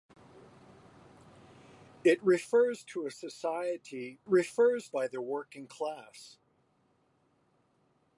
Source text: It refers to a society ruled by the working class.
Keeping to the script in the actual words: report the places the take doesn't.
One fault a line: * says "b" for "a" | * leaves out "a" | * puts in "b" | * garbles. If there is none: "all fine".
* says "refers" for "ruled"